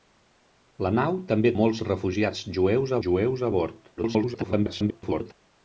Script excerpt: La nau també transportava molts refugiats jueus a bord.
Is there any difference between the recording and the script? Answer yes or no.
yes